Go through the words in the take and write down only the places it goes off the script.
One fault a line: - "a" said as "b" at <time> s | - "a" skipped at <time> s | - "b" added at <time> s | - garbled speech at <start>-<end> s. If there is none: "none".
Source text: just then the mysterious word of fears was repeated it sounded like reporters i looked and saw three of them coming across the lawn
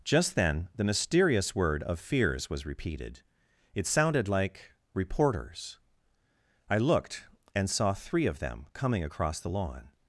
none